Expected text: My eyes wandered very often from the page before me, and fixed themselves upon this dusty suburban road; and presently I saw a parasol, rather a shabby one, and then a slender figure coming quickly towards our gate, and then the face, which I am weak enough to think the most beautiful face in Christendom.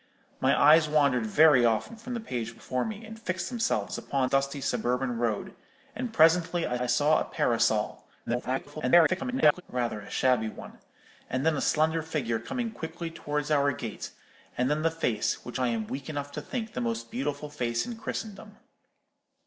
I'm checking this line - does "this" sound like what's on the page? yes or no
no